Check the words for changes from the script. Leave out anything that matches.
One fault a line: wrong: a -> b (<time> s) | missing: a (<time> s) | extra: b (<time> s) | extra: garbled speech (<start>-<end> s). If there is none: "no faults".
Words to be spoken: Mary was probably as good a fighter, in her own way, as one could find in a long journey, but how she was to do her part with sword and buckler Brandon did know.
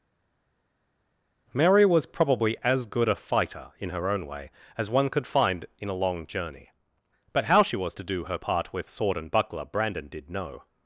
no faults